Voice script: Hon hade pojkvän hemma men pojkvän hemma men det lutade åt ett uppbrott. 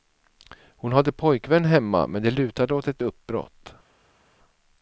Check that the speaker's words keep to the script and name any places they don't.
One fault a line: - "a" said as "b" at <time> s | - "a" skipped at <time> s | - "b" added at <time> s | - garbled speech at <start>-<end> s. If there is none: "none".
- "pojkvän hemma men" skipped at 2.2 s